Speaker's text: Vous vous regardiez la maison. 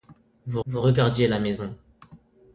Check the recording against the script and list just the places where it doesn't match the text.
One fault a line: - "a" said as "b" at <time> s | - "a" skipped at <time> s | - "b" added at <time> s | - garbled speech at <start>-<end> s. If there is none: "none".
none